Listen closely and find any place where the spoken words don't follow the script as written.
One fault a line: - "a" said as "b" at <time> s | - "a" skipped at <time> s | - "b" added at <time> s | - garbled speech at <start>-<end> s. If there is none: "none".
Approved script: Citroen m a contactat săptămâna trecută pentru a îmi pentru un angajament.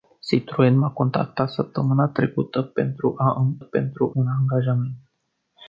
none